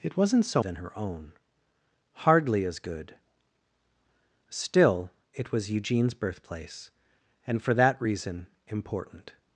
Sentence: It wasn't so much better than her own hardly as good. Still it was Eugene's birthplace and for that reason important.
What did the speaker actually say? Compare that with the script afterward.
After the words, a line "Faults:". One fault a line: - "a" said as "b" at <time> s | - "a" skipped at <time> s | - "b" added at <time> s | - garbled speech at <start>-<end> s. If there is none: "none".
It wasn't so than her own hardly as good. Still it was Eugene's birthplace and for that reason important.
Faults:
- "much better" skipped at 0.6 s